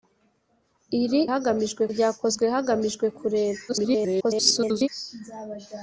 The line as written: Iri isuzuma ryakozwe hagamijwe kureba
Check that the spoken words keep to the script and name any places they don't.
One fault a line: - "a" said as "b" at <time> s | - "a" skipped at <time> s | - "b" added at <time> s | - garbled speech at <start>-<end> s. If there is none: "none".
- "isuzuma" said as "hagamijwe" at 1.3 s
- garbled speech at 3.7-4.9 s